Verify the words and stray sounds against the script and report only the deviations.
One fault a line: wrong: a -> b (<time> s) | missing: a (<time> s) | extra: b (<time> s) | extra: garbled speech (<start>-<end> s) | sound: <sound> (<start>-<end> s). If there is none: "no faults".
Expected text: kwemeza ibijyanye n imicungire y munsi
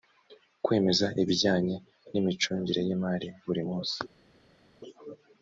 extra: imari buri (3.0 s)